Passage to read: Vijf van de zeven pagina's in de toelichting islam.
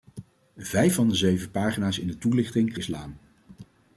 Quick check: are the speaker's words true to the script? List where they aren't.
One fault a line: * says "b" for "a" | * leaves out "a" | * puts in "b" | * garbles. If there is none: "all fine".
all fine